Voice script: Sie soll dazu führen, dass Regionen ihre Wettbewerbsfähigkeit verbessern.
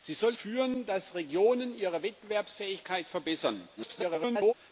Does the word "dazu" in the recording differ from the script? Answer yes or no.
yes